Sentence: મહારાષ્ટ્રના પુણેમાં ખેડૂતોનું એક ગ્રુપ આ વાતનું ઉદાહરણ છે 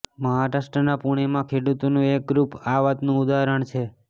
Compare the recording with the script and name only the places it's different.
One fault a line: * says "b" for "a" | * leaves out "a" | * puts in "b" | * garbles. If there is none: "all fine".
all fine